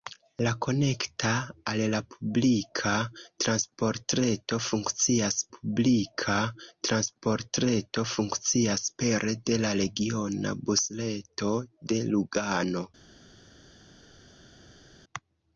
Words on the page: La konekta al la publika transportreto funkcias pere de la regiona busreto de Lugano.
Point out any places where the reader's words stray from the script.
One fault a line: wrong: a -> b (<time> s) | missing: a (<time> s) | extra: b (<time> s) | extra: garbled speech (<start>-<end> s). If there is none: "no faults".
extra: publika transportreto funkcias (5.5 s)